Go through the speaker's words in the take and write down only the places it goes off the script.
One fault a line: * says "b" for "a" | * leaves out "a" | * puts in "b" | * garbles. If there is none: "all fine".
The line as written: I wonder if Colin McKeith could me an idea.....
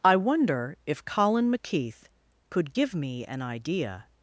* puts in "give"